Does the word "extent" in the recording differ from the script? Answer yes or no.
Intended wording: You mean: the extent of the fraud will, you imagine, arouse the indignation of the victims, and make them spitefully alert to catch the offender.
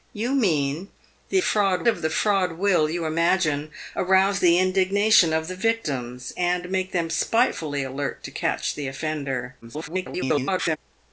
yes